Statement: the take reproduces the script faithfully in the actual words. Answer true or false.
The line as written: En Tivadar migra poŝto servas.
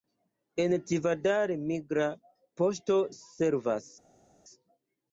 true